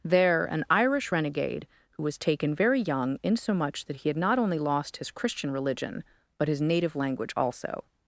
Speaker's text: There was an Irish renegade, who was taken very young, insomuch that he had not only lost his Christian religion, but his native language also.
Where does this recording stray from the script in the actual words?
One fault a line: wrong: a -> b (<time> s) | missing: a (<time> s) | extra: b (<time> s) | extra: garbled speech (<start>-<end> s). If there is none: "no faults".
missing: was (0.5 s)